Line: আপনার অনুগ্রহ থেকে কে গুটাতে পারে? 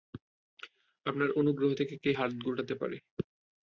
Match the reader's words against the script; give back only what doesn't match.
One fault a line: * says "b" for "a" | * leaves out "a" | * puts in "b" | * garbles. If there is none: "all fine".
* puts in "হাত"